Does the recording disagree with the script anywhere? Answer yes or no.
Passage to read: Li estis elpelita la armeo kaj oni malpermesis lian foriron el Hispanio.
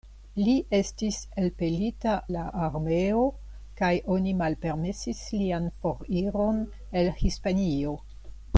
no